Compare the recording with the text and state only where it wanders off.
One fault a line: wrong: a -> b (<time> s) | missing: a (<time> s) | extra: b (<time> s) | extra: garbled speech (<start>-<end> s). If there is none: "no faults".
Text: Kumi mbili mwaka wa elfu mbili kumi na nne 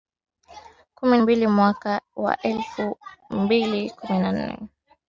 no faults